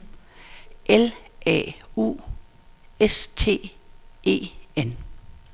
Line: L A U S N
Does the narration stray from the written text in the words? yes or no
yes